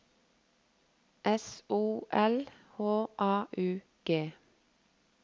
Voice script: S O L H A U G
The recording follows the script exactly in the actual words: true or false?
true